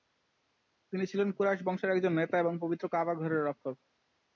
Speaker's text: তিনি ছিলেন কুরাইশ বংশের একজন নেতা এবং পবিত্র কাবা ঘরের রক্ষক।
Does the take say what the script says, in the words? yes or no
yes